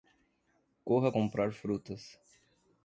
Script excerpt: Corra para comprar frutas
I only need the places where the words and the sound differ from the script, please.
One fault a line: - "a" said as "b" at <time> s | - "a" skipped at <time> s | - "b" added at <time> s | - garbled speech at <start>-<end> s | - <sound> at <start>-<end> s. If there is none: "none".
- "para" skipped at 1.1 s